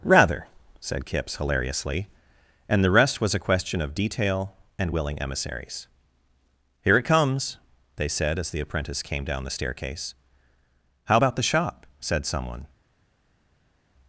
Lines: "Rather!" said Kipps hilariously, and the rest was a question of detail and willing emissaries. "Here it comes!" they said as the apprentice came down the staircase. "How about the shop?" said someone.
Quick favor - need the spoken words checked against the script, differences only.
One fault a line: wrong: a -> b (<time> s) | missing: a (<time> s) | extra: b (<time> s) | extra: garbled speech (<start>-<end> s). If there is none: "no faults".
no faults